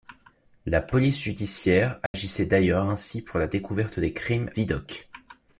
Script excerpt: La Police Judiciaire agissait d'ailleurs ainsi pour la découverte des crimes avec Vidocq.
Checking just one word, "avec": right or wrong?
wrong